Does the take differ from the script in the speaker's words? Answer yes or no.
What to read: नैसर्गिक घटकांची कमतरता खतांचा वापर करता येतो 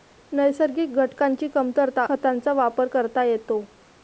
no